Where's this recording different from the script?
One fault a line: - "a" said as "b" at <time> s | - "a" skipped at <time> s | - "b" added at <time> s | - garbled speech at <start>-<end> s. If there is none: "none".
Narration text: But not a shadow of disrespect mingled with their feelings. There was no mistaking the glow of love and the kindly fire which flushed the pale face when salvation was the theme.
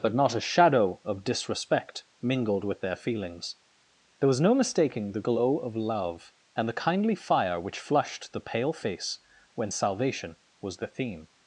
none